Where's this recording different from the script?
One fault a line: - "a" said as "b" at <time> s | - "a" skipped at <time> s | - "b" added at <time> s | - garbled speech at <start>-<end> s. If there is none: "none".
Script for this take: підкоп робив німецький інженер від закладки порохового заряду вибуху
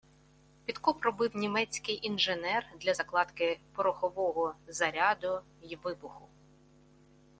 - "від" said as "для" at 2.8 s
- "й" added at 5.6 s